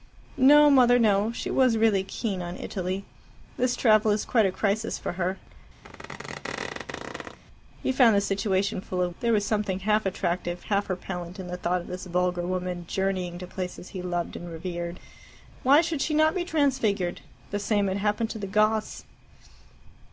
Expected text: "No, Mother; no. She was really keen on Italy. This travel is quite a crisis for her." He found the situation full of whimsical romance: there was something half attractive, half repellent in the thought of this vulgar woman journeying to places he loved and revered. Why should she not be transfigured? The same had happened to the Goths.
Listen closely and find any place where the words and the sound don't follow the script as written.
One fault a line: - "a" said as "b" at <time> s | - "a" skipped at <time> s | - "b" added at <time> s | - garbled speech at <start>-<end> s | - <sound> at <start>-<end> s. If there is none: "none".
- squeak at 5.8-7.4 s
- "whimsical romance" skipped at 9.1 s